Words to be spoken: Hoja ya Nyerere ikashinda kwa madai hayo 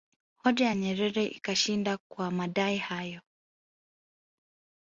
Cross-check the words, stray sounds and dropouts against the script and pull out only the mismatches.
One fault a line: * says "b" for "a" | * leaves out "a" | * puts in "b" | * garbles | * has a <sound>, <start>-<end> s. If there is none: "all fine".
all fine